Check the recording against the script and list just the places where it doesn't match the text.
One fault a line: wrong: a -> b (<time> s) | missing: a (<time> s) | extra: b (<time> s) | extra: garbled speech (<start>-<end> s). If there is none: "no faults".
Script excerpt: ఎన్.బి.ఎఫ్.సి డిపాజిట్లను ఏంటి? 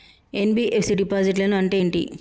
extra: అంటే (1.6 s)